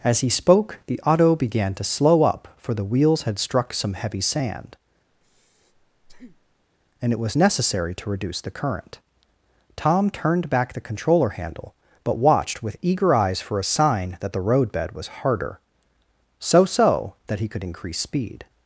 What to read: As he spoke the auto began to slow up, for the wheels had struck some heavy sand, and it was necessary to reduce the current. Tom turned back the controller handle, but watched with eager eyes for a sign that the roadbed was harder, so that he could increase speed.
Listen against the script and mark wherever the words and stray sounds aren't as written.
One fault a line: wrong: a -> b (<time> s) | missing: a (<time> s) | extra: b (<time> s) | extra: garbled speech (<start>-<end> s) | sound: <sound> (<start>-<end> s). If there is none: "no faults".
sound: breath (5.1-6.6 s)
extra: so (16.6 s)